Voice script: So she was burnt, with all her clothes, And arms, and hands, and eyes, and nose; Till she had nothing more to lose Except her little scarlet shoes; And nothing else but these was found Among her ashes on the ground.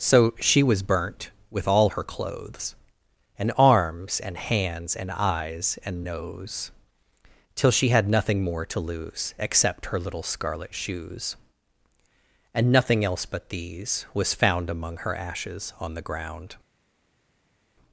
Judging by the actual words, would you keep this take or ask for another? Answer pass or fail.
pass